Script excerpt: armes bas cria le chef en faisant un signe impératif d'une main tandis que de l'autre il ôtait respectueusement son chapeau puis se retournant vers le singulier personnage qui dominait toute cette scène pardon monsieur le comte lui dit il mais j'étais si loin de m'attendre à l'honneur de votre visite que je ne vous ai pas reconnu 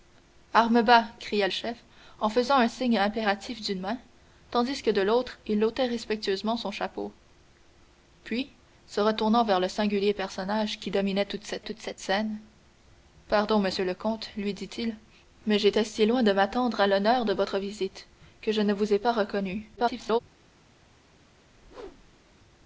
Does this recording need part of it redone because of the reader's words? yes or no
yes